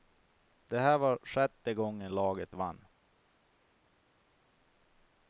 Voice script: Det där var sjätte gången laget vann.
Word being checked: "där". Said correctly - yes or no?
no